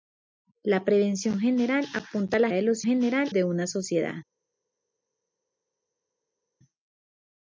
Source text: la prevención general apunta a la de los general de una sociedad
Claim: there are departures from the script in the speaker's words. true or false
false